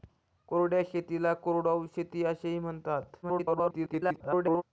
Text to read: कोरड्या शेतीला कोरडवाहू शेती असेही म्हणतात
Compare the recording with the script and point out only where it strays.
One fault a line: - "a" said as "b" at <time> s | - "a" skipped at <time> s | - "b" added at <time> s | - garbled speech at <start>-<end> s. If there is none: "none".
- garbled speech at 3.2-4.6 s